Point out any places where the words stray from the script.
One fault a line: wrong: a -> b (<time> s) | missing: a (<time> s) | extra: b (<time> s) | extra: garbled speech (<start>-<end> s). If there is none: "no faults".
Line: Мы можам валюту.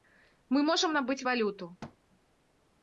extra: набыць (1.0 s)